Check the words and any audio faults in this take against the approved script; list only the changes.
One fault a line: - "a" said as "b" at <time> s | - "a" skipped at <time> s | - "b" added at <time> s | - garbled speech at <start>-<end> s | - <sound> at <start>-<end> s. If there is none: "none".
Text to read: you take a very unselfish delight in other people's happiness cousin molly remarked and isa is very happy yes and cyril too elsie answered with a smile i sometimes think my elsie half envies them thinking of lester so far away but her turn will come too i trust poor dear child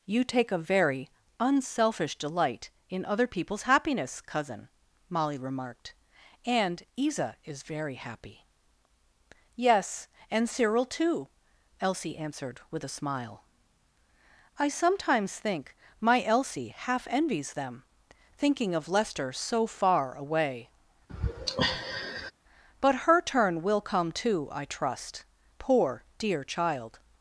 - sigh at 21.1-22.3 s